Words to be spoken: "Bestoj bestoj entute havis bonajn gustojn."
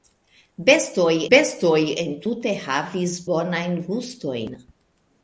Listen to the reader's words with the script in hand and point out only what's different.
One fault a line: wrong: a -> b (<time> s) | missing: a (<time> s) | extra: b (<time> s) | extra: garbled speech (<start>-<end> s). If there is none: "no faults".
no faults